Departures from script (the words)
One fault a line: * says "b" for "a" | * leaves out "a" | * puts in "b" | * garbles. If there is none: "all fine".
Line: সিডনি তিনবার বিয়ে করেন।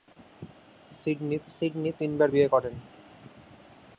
* puts in "সিডনি"